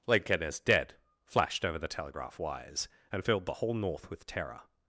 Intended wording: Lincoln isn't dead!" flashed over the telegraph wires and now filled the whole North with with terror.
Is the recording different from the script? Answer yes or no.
yes